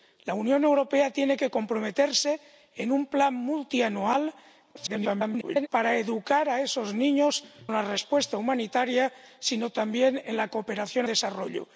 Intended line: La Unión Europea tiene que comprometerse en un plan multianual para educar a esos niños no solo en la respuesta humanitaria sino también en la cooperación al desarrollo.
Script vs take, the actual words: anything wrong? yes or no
yes